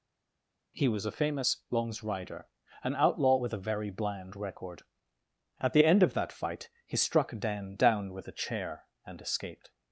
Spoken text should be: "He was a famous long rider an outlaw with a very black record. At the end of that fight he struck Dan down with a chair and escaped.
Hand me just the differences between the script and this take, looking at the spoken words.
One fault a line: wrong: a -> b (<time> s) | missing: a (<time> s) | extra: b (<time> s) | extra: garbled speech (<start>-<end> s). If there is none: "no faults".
wrong: long -> longs (1.7 s)
wrong: black -> bland (3.9 s)